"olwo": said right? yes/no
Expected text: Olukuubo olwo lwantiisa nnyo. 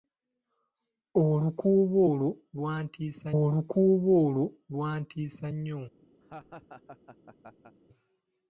yes